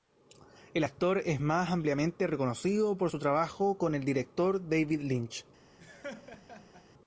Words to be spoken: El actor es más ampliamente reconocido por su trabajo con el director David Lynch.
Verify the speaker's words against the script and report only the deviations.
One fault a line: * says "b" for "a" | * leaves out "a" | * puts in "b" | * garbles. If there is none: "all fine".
all fine